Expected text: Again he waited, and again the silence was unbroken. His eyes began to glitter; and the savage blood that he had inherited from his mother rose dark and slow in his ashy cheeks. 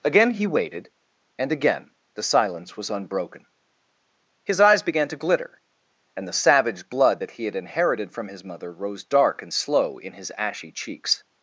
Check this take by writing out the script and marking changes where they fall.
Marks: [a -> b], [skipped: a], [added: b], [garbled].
Again he waited, and again the silence was unbroken. His eyes began to glitter; and the savage blood that he had inherited from his mother rose dark and slow in his ashy cheeks.